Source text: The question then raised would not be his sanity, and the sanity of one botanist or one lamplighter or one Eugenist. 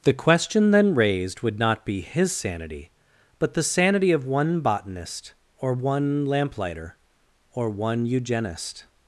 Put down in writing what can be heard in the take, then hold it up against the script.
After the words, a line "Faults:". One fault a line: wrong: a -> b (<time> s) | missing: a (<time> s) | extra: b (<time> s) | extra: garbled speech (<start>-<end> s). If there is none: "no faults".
The question then raised would not be his sanity, but the sanity of one botanist or one lamplighter or one Eugenist.
Faults:
wrong: and -> but (3.4 s)